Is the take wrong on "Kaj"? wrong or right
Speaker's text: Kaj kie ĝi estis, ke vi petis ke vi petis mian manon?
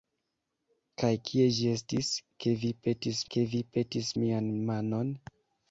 right